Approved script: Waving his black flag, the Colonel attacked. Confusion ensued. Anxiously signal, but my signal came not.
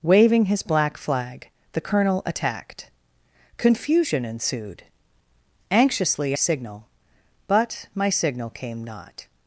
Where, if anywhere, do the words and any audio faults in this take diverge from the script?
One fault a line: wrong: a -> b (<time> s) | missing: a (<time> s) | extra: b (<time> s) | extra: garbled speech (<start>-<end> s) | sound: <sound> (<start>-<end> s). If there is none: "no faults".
no faults